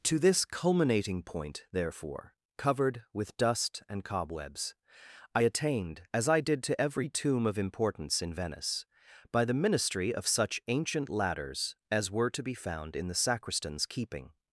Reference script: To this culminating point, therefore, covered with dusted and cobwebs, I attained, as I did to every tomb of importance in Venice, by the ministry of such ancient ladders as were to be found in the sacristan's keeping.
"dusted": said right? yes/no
no